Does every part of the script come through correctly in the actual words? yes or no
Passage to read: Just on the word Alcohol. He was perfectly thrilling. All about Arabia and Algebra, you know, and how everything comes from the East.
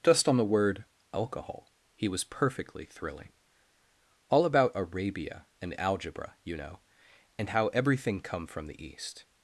no